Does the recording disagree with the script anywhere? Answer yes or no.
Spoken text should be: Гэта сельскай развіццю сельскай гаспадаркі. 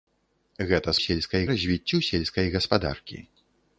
no